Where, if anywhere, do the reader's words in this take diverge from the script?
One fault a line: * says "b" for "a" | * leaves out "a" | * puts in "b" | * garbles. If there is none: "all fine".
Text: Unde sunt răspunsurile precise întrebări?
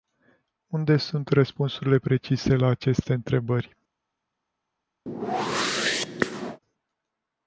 * puts in "la aceste"